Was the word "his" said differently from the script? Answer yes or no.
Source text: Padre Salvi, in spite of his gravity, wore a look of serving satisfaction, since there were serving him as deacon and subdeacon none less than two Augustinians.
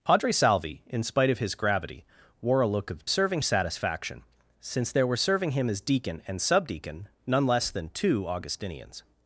no